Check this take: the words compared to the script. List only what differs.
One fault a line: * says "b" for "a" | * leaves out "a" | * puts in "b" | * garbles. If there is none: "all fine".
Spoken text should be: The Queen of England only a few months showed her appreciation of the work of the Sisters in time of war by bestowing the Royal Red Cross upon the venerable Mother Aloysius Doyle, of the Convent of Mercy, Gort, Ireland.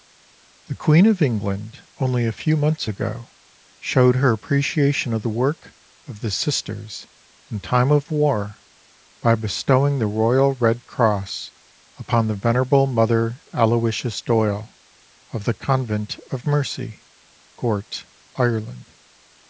* puts in "ago"